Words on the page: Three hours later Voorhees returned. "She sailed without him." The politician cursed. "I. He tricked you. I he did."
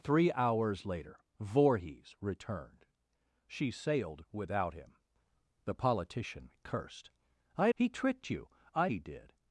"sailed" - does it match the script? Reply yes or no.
yes